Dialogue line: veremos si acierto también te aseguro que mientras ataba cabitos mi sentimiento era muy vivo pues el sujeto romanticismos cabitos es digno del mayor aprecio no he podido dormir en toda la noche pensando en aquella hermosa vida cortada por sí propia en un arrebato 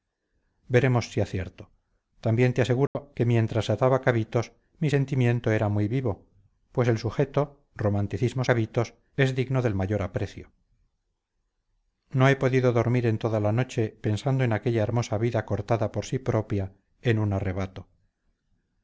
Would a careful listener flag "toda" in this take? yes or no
no